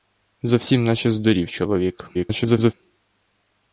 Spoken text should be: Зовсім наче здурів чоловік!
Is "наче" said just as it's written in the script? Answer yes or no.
yes